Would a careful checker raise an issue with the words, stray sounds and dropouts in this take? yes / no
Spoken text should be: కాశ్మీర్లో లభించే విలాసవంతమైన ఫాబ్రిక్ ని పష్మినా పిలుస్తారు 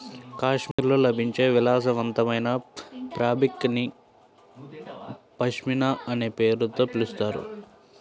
yes